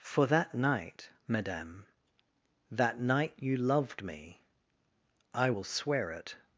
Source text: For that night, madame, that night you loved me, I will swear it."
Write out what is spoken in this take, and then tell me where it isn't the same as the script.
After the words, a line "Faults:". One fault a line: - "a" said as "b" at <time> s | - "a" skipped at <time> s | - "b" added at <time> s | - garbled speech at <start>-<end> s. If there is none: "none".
For that night, madame, that night you loved me, I will swear it."
Faults:
none